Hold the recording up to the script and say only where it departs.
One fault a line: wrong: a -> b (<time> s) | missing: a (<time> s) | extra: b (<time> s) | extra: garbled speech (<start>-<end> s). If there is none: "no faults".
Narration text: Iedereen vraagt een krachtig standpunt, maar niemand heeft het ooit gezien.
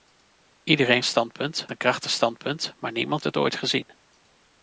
wrong: vraagt -> standpunt (1.0 s)
missing: heeft (3.2 s)